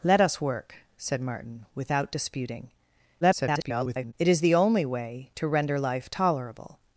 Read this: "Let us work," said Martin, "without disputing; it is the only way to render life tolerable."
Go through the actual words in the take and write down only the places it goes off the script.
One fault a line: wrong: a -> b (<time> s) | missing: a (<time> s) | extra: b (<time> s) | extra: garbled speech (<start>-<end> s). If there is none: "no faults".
extra: garbled speech (3.2-4.1 s)